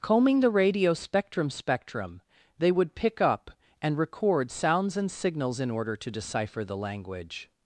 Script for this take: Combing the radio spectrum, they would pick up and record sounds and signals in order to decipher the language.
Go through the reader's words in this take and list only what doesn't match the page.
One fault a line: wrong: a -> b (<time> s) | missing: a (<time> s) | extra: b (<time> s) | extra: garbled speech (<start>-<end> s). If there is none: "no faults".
extra: spectrum (1.5 s)